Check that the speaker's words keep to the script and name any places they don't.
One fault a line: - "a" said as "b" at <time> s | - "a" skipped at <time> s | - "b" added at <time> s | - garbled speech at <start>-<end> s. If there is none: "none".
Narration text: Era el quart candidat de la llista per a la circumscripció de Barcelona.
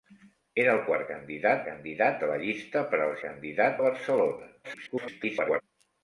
- "candidat" added at 1.7 s
- "circumscripció" said as "candidat" at 3.2 s
- garbled speech at 4.6-5.6 s